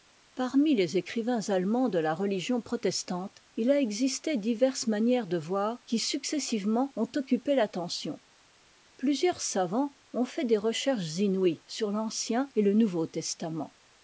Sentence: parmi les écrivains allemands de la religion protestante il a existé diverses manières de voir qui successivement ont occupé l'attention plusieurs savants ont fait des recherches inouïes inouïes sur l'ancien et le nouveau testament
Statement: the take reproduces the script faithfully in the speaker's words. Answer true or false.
false